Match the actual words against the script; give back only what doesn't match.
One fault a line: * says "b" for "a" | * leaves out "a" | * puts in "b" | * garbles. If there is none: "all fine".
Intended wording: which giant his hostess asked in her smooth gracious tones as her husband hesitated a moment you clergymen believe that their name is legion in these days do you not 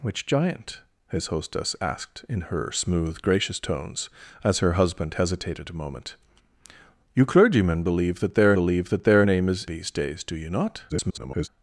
* puts in "believe that their"
* leaves out "legion in"
* garbles